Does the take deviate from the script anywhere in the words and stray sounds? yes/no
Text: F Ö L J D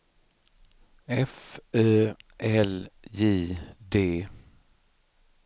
no